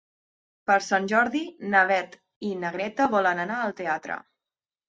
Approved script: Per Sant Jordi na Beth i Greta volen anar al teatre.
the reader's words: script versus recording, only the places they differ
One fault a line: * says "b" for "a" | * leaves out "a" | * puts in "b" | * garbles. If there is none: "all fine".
* puts in "na"